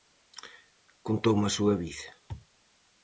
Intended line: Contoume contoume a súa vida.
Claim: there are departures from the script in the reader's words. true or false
true